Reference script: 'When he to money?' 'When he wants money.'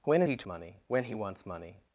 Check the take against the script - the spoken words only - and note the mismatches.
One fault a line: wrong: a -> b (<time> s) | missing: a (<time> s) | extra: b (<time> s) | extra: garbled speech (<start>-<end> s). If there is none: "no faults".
no faults